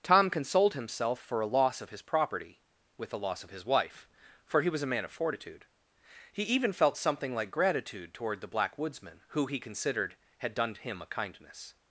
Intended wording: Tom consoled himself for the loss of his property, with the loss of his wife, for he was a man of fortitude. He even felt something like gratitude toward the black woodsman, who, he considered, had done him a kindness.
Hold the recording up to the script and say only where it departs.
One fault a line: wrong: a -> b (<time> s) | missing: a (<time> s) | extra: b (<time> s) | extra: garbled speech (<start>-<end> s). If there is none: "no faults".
wrong: the -> a (1.4 s)